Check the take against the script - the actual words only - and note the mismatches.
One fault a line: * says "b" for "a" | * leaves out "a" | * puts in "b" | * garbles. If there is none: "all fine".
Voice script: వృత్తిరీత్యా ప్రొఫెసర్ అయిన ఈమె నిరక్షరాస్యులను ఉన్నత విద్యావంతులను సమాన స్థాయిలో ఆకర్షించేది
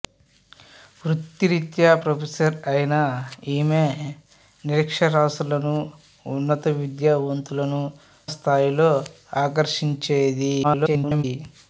* leaves out "సమాన"
* garbles